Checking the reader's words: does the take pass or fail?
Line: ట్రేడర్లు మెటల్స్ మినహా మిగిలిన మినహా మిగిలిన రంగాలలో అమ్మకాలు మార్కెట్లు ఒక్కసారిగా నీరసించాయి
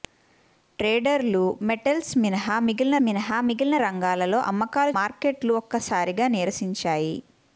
pass